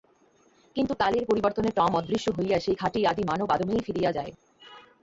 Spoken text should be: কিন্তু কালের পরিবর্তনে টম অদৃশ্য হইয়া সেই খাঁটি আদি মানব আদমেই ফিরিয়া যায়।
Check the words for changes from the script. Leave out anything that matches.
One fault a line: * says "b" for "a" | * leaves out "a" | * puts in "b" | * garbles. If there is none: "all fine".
all fine